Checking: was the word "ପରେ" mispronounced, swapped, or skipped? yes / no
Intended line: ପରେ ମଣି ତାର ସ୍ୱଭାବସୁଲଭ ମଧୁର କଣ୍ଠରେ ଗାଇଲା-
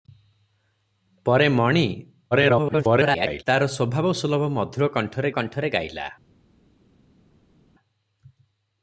no